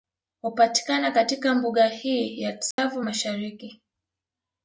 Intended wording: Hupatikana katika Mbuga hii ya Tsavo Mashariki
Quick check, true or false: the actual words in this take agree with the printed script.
true